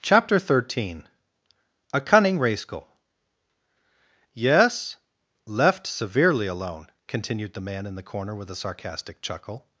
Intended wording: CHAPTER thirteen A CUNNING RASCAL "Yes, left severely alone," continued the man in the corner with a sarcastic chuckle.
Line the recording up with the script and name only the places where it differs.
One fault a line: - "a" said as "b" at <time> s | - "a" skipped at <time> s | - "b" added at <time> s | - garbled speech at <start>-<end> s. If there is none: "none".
none